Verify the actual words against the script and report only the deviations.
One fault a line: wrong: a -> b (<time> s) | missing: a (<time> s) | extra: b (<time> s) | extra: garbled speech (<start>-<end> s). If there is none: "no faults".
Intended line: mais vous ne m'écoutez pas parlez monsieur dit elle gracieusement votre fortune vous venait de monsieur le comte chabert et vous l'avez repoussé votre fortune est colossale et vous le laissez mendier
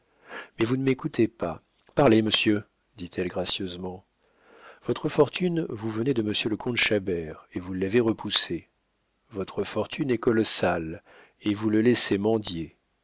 no faults